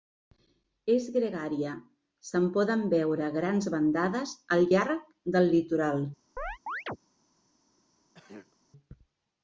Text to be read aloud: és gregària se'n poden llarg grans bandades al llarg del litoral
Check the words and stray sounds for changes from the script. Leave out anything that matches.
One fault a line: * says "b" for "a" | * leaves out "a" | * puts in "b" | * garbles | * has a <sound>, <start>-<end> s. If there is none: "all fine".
* says "veure" for "llarg"
* has a chirp, 6.4-7.0 s
* has a throat clearing, 8.1-8.6 s